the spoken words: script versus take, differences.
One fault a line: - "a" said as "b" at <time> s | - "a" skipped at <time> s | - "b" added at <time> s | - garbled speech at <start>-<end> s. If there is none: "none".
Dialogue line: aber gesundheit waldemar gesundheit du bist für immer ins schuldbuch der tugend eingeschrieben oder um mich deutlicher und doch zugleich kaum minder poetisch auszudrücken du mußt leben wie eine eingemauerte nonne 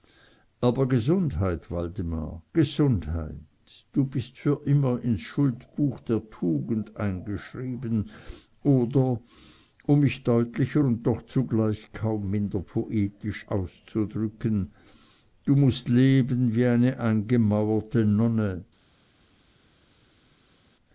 none